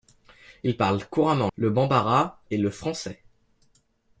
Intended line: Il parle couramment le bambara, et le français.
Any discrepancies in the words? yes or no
no